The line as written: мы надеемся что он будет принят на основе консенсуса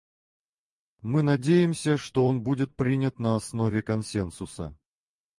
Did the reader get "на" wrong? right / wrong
right